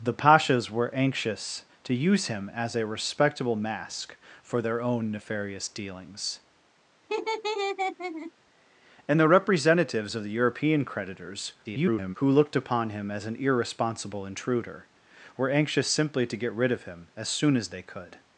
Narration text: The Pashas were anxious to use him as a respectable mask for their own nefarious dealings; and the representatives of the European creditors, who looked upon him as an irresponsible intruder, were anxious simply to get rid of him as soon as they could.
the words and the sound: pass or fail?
fail